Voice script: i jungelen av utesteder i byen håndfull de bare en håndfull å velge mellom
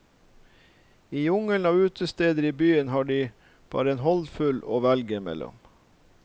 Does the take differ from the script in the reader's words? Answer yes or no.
yes